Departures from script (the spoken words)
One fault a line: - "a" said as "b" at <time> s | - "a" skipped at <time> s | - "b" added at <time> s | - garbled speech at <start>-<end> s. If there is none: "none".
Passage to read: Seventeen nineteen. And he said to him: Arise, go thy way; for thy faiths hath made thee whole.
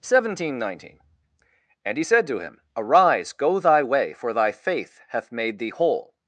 - "faiths" said as "faith" at 4.5 s